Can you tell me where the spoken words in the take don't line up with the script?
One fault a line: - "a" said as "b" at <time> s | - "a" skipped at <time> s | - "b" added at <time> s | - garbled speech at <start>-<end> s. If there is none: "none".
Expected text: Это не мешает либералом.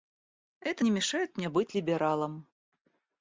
- "мне быть" added at 1.4 s